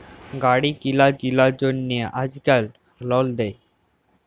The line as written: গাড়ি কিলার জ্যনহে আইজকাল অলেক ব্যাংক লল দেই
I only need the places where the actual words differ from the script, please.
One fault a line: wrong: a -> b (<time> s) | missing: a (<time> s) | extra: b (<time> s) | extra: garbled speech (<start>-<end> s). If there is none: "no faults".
extra: কিলার (1.2 s)
missing: অলেক ব্যাংক (2.6 s)